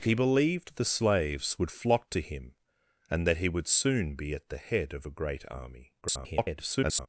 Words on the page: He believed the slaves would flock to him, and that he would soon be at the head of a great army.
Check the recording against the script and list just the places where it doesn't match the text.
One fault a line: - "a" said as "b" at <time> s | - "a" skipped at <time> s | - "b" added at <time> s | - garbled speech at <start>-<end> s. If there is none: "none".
- garbled speech at 6.0-7.1 s